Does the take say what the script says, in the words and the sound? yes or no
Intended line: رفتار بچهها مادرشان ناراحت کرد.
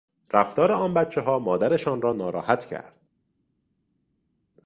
no